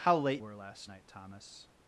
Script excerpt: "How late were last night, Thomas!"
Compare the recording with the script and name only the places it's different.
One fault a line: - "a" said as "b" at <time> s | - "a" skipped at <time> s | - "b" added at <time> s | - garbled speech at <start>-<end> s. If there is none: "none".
none